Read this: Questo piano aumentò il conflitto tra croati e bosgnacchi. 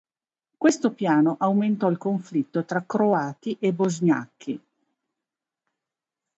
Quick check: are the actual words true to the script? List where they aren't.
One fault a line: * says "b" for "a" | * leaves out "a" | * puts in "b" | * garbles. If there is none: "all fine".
all fine